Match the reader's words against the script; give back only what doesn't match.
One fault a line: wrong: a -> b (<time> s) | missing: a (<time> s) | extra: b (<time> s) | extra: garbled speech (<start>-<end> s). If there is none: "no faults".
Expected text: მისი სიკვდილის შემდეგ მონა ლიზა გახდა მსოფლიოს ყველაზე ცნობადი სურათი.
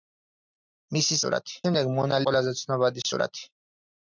wrong: სიკვდილის -> სურათი (1.2 s)
missing: ლიზა გახდა მსოფლიოს (2.2 s)